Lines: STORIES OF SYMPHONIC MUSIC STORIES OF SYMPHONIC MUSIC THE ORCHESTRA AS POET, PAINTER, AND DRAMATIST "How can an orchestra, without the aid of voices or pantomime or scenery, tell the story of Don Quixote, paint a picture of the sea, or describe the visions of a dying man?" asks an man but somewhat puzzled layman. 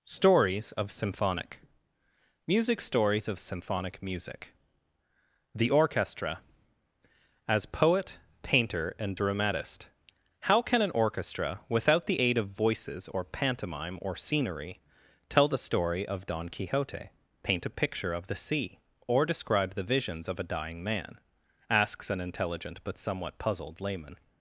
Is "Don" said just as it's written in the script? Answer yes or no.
yes